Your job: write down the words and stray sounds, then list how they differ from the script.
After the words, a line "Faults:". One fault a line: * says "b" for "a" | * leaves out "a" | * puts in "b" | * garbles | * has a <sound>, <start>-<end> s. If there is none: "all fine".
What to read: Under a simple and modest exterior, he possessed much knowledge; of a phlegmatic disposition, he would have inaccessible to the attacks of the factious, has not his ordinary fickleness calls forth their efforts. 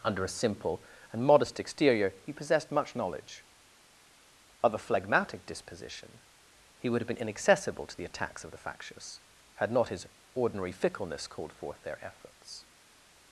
Under a simple and modest exterior, he possessed much knowledge; of a phlegmatic disposition, he would have been inaccessible to the attacks of the factious, had not his ordinary fickleness called forth their efforts.
Faults:
* puts in "been"
* says "had" for "has"
* says "called" for "calls"